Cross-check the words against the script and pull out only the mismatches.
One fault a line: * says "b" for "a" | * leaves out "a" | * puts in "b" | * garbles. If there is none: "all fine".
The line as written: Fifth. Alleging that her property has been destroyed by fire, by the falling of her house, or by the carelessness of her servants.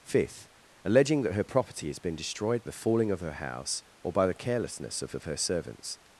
* leaves out "by fire by"
* puts in "of"